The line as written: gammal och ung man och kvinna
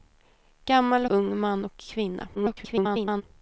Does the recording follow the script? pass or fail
fail